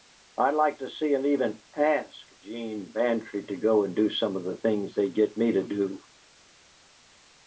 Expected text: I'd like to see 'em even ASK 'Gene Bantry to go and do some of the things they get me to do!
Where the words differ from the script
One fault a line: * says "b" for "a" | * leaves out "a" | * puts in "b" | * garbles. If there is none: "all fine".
all fine